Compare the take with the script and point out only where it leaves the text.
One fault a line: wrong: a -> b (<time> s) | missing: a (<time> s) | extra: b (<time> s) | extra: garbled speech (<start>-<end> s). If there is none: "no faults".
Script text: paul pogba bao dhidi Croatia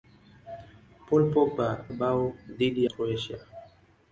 no faults